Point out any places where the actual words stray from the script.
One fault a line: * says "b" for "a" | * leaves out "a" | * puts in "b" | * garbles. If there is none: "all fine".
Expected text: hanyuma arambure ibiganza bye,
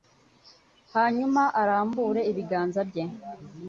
all fine